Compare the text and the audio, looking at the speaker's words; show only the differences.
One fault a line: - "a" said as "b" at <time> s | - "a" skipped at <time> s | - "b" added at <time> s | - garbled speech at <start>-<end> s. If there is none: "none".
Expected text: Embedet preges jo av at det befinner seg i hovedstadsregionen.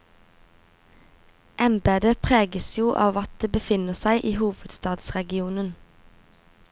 none